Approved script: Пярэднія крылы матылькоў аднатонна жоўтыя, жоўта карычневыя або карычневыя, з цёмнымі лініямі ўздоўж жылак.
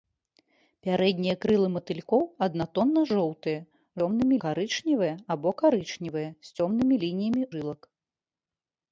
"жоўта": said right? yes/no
no